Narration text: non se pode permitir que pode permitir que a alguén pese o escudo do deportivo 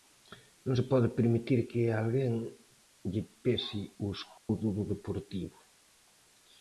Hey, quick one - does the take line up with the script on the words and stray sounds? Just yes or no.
no